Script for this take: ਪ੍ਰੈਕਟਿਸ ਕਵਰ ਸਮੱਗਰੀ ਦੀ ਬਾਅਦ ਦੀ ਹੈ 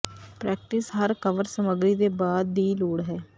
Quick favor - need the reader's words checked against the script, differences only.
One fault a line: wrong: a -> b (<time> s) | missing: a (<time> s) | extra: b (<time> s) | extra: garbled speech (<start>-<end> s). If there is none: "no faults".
extra: ਹਰ (0.9 s)
wrong: ਦੀ -> ਦੇ (1.9 s)
extra: ਲੋੜ (2.7 s)